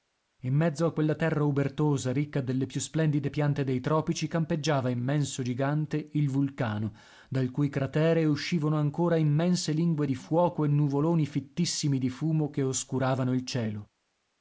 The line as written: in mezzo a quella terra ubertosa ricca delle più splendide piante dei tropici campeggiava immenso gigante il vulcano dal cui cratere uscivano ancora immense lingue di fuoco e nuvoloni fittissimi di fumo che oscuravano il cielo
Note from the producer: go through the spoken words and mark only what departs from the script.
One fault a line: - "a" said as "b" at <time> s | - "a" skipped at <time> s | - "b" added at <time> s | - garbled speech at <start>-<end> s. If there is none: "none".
none